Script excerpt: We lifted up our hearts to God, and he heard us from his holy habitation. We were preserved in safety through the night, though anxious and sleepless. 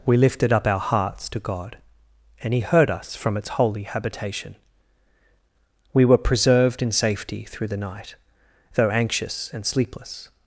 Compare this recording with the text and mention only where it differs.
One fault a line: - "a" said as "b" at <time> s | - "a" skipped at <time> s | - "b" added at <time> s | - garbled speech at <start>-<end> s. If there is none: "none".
- "his" said as "its" at 3.4 s